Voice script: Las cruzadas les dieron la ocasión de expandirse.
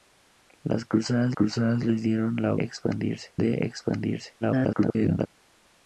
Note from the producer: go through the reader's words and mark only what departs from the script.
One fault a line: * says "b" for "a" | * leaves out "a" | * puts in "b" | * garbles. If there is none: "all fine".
* puts in "cruzadas"
* says "expandirse" for "ocasión"
* garbles